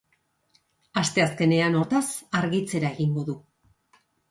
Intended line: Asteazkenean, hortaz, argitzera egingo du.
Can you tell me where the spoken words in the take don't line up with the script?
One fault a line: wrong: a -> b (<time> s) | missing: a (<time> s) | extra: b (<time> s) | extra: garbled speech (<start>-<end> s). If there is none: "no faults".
no faults